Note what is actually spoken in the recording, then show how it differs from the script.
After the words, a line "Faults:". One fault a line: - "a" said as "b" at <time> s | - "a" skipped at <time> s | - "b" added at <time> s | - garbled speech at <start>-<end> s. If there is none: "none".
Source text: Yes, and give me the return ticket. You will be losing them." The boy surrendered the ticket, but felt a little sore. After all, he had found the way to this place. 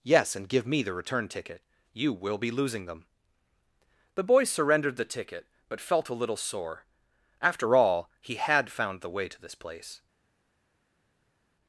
Yes, and give me the return ticket. You will be losing them." The boy surrendered the ticket, but felt a little sore. After all, he had found the way to this place.
Faults:
none